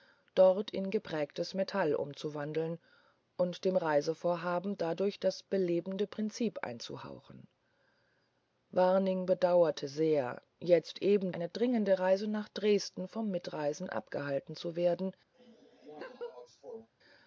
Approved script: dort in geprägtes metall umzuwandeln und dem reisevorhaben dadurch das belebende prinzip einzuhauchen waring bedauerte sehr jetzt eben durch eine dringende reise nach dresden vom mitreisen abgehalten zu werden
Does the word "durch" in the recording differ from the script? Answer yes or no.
yes